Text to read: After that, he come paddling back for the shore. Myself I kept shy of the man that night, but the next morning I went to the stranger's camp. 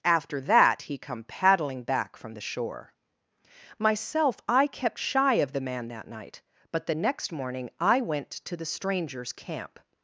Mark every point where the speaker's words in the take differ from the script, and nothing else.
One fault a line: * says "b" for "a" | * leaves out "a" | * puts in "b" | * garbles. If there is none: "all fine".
* says "from" for "for"